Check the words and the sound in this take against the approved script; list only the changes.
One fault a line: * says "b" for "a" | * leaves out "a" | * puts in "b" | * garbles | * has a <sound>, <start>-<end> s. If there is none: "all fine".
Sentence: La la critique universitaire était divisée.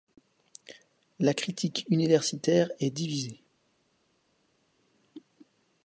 * leaves out "la"
* says "est" for "était"